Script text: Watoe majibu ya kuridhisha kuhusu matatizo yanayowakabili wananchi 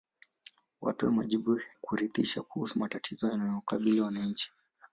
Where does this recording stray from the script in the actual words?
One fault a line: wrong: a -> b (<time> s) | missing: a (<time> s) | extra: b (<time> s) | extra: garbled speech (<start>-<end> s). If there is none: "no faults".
missing: ya (1.6 s)